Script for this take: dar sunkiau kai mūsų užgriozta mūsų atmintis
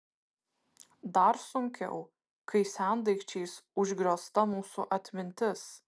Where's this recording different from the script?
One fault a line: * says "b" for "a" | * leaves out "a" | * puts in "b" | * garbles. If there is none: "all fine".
* says "sendaikčiais" for "mūsų"